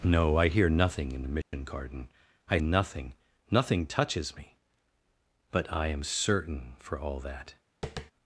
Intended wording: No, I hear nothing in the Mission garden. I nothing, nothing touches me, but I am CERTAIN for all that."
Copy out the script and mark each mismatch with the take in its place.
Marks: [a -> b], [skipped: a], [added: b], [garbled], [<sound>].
No, I hear nothing in the Mission [dropout] garden. I nothing, nothing touches me, but I am CERTAIN for all that." [tap]